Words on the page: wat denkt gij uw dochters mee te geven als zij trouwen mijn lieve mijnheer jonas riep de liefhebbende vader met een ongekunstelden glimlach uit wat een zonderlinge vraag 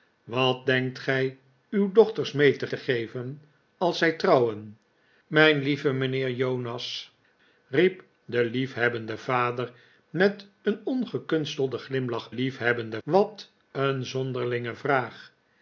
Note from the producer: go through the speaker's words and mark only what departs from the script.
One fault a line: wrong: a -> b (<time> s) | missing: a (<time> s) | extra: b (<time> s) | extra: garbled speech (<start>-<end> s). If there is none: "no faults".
extra: te (2.7 s)
wrong: uit -> liefhebbende (12.3 s)